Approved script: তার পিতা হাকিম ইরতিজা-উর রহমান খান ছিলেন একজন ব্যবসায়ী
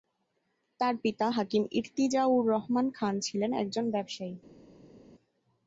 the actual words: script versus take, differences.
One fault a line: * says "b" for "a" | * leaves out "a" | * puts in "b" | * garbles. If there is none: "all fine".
all fine